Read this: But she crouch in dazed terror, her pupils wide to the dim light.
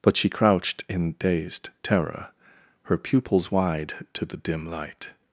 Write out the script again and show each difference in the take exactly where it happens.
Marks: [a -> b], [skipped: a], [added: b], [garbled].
But she [crouch -> crouched] in dazed terror, her pupils wide to the dim light.